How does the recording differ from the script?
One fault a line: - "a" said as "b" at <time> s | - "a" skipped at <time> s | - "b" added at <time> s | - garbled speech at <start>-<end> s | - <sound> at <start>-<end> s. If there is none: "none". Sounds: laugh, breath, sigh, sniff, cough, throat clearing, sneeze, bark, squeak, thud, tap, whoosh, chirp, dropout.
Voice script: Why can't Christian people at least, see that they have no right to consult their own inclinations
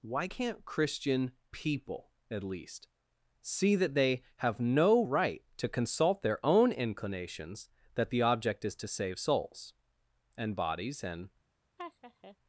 - "that the object is to save souls and bodies and" added at 7.9 s
- laugh at 11.8-12.4 s